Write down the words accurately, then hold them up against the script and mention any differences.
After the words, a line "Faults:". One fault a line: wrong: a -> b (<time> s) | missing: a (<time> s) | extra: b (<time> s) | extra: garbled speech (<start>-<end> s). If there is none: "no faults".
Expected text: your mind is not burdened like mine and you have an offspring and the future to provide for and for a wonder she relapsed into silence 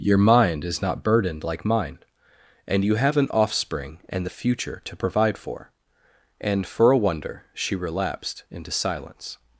your mind is not burdened like mine and you have an offspring and the future to provide for and for a wonder she relapsed into silence
Faults:
no faults